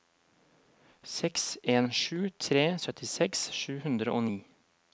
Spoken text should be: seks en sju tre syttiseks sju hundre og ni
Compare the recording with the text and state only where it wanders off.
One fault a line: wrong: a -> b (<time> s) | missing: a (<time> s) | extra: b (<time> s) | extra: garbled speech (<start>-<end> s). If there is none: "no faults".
no faults